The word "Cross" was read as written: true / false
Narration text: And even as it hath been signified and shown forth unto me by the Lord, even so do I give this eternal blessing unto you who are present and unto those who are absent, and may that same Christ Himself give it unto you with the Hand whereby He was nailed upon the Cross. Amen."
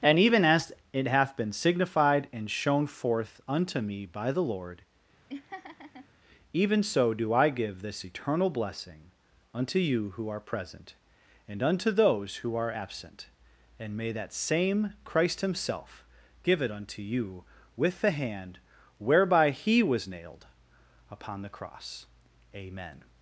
true